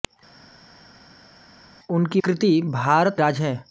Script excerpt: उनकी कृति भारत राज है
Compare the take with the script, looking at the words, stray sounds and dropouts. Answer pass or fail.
pass